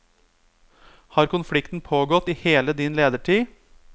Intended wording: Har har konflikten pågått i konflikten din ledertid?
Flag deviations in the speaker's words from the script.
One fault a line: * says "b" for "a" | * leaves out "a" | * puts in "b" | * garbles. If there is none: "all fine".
* leaves out "har"
* says "hele" for "konflikten"